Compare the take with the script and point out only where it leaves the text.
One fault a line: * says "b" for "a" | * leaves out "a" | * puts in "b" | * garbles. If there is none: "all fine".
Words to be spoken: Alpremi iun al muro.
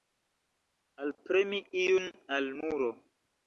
all fine